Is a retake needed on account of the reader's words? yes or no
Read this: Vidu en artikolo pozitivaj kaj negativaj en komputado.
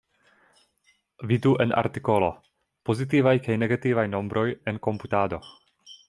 yes